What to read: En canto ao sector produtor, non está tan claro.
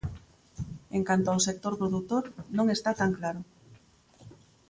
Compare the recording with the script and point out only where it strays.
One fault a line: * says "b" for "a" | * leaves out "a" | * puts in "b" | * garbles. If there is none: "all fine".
all fine